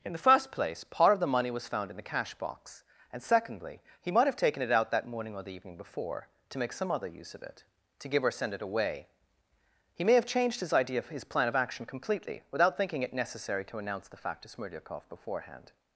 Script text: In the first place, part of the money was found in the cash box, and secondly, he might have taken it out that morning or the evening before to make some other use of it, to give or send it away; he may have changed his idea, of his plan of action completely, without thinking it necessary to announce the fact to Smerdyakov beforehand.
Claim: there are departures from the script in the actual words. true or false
false